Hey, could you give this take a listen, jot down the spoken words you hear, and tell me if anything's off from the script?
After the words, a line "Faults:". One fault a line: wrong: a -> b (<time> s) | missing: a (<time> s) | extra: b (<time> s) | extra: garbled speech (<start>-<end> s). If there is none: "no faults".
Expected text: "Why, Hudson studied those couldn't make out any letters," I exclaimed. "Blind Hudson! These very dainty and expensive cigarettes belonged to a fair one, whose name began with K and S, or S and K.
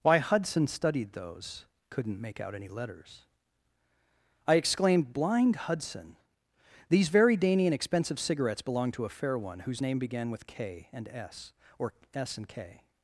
"Why, Hudson studied those couldn't make out any letters," I exclaimed. "Blind Hudson! These very dainty and expensive cigarettes belonged to a fair one, whose name began with K and S, or S and K.
Faults:
no faults